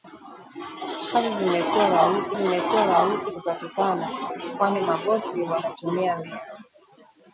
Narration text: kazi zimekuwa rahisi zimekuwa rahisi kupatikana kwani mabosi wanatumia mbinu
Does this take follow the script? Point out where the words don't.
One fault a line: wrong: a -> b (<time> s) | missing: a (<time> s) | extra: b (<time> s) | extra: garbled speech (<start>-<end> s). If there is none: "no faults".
no faults